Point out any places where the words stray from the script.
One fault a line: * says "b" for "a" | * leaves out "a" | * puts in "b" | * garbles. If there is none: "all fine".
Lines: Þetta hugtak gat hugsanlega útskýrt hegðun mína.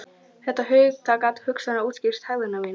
all fine